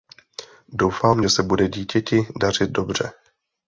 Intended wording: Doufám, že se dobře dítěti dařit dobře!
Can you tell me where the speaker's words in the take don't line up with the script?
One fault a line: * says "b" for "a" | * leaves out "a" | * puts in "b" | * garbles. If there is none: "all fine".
* says "bude" for "dobře"